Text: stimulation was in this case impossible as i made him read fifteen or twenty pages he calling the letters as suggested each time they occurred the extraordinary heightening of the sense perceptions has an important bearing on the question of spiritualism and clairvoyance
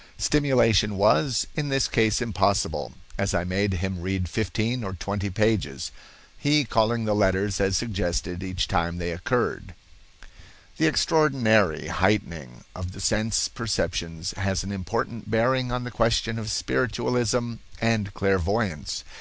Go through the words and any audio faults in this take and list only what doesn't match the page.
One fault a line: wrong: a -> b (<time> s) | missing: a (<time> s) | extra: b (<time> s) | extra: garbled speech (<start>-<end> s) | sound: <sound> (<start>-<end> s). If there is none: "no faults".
no faults